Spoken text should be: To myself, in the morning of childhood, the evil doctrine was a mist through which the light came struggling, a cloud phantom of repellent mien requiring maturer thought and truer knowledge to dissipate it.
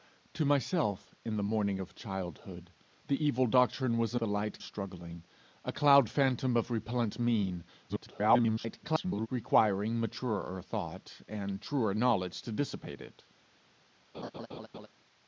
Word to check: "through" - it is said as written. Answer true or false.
false